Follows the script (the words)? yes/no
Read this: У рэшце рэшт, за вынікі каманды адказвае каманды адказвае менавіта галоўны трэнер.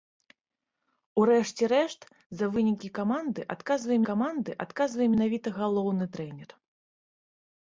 yes